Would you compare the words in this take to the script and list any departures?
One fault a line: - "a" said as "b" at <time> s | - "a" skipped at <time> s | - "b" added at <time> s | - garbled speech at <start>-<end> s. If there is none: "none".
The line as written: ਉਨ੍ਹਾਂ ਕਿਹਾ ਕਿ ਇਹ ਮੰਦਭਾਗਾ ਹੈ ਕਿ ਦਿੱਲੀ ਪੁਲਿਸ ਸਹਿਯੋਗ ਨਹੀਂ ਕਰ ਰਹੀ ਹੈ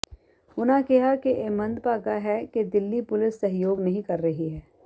none